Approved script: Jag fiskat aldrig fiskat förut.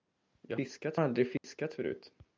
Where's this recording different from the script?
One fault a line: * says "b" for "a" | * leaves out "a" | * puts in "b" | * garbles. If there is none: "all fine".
all fine